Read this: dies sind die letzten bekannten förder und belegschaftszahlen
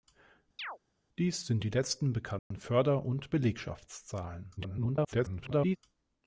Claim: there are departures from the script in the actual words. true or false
true